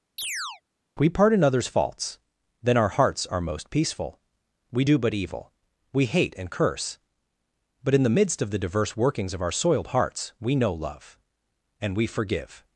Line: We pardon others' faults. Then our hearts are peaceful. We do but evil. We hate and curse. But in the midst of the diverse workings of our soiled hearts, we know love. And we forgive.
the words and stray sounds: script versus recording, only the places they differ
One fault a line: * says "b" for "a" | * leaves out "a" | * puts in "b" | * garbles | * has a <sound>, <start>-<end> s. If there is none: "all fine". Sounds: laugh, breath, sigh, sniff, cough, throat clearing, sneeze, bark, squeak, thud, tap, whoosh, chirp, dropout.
* has a chirp, 0.2-0.6 s
* puts in "most"